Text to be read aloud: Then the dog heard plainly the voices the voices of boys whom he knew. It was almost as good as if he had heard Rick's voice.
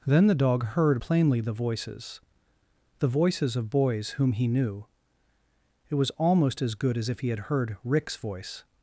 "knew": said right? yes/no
yes